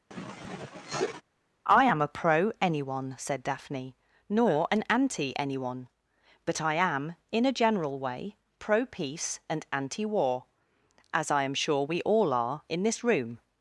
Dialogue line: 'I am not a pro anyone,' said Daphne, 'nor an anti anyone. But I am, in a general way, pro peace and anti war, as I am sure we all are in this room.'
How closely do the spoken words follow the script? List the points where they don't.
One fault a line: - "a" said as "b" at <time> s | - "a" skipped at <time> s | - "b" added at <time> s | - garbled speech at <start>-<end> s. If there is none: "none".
- "not" skipped at 2.0 s